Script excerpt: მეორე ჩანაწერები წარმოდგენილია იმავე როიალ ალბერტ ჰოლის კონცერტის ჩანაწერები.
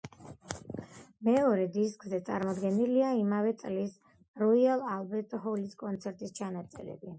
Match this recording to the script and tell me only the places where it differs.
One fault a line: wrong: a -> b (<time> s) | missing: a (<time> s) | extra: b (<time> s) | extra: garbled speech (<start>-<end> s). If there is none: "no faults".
wrong: ჩანაწერები -> დისკზე (1.8 s)
extra: წლის (3.6 s)